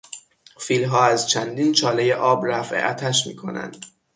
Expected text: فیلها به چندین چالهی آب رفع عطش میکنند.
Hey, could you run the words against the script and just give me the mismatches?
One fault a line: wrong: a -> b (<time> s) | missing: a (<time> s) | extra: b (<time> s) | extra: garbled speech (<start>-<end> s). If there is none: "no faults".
wrong: به -> از (1.1 s)